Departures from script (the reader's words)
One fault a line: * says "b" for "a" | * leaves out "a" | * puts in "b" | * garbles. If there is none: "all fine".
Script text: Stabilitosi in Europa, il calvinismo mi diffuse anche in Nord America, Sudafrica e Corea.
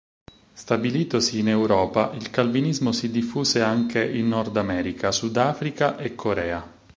* says "si" for "mi"